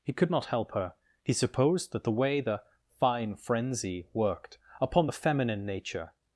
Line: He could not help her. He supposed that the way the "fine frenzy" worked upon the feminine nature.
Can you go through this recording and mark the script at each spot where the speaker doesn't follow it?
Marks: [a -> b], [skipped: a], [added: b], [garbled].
He could not help her. He supposed that the way the "fine frenzy" worked upon the feminine nature.